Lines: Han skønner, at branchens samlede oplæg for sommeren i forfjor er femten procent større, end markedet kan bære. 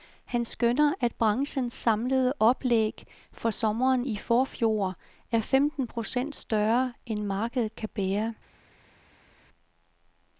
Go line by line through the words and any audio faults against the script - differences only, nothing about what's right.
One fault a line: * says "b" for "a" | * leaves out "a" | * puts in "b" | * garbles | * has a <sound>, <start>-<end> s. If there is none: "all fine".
all fine